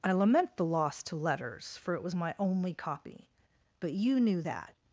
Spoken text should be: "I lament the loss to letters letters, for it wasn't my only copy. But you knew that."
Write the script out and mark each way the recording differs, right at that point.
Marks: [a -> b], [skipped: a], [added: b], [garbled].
"I lament the loss to letters [skipped: letters,] for it [wasn't -> was] my only copy. But you knew that."